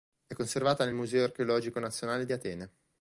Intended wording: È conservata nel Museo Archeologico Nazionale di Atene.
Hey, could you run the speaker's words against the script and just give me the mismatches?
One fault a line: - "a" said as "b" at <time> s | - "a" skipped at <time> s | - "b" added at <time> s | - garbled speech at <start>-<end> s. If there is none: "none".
none